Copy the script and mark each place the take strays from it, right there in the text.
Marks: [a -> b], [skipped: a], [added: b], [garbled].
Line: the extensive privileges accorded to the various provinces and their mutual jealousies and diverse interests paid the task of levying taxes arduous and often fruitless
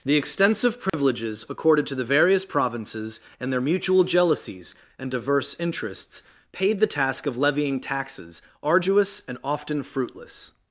the extensive privileges accorded to the various provinces and their mutual jealousies and diverse interests paid the task of levying taxes arduous and often fruitless